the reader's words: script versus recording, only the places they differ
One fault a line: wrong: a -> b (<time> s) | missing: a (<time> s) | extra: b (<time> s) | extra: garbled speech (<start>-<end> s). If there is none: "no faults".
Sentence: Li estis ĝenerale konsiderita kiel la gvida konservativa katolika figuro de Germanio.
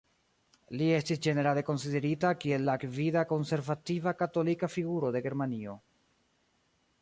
no faults